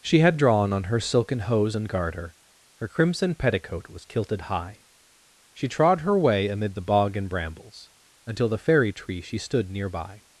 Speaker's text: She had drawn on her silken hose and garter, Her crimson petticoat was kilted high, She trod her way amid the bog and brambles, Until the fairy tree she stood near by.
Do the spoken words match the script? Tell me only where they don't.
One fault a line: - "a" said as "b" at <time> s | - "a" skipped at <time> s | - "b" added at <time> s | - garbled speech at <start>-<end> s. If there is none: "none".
none